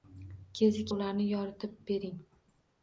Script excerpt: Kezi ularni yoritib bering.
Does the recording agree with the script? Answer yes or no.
yes